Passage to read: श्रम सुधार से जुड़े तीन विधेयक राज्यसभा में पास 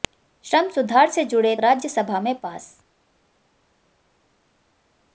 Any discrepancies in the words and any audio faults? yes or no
yes